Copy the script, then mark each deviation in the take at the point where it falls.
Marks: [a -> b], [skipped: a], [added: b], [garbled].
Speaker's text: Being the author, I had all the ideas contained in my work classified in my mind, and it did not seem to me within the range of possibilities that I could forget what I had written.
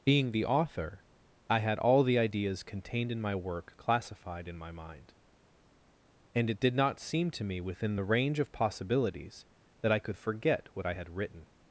Being the author, I had all the ideas contained in my work classified in my mind, and it did not seem to me within the range of possibilities that I could forget what I had written.